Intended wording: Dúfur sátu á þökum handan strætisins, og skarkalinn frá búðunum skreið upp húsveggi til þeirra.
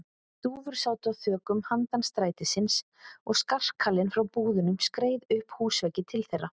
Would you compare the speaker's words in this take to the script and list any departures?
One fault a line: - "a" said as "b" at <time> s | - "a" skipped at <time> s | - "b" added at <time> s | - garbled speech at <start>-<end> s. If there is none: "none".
none